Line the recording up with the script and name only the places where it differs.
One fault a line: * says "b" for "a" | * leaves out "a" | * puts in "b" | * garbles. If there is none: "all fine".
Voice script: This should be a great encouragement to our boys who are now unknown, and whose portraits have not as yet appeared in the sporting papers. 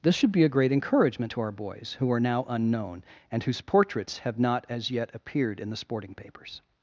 all fine